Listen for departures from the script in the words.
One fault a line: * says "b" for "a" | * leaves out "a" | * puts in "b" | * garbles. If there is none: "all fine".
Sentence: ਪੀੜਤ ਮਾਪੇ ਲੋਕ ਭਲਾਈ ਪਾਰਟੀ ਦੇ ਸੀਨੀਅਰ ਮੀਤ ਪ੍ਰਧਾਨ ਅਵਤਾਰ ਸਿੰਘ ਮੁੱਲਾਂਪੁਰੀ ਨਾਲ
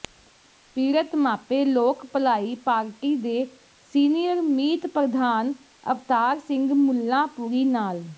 all fine